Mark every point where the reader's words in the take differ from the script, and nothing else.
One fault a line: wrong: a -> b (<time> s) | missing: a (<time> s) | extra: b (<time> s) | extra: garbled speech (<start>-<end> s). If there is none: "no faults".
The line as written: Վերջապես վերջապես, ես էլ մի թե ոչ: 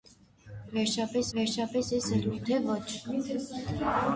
no faults